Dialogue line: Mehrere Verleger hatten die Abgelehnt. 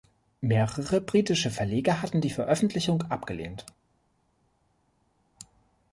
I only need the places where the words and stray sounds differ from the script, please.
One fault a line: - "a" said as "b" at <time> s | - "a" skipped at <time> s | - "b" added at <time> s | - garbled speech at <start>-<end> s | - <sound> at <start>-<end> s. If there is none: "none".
- "britische" added at 1.0 s
- "Veröffentlichung" added at 2.3 s